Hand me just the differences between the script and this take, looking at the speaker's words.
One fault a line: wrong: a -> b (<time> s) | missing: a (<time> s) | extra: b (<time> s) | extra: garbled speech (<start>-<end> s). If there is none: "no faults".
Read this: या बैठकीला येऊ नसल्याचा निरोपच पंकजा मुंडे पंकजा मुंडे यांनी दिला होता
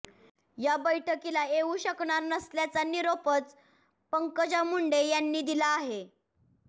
extra: शकणार (1.8 s)
missing: पंकजा मुंडे (5.0 s)
wrong: होता -> आहे (5.7 s)